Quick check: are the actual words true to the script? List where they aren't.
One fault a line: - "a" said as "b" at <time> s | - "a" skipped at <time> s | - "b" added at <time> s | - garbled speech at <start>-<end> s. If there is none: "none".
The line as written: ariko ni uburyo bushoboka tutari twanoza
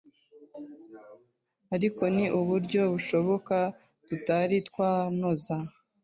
none